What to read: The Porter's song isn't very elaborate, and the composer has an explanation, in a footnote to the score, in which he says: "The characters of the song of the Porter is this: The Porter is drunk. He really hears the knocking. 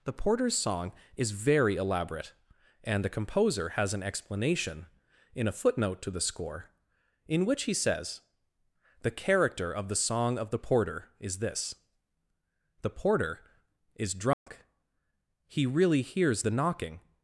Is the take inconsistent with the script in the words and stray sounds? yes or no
yes